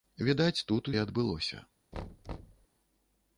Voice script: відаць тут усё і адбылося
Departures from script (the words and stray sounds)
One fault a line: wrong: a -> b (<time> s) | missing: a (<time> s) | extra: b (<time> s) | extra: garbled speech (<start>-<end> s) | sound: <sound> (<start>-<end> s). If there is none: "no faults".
missing: усё (0.9 s)
sound: thud (1.9-2.7 s)